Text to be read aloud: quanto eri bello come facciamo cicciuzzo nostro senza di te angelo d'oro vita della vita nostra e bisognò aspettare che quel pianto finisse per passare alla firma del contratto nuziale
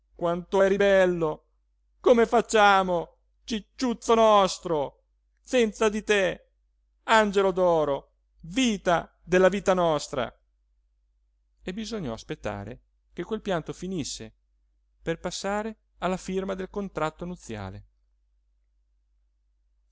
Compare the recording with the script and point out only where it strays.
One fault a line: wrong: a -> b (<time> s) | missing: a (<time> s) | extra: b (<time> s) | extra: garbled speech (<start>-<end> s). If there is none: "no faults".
no faults